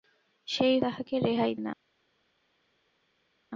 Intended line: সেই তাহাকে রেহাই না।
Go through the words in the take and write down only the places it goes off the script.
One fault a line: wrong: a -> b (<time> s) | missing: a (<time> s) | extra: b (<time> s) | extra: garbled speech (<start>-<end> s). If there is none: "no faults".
no faults